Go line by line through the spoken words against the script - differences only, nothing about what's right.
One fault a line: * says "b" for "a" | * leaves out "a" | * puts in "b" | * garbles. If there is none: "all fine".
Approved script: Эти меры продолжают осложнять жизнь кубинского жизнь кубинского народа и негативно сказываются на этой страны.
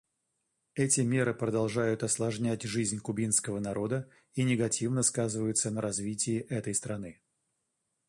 * leaves out "жизнь кубинского"
* puts in "развитии"